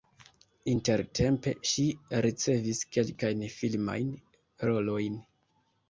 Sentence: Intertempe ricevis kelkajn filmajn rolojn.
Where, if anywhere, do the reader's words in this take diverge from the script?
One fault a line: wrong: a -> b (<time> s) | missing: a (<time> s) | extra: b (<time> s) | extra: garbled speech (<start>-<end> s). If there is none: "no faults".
extra: ŝi (1.7 s)